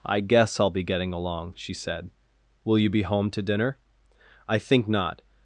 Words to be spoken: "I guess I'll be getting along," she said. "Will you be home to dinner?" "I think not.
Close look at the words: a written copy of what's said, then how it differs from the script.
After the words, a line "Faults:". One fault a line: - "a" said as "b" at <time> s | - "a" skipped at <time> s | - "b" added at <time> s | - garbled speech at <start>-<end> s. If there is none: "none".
"I guess I'll be getting along," she said. "Will you be home to dinner?" "I think not.
Faults:
none